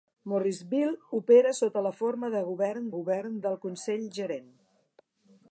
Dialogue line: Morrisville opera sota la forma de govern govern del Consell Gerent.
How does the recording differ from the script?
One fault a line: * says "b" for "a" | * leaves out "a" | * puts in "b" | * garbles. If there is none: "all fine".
all fine